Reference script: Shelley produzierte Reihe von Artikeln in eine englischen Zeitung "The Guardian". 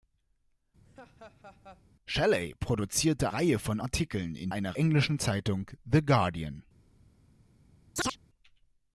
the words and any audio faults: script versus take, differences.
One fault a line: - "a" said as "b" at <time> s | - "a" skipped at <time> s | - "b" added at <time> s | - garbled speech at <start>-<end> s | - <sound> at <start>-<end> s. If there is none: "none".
- laugh at 0.8-1.8 s
- chirp at 8.0-8.2 s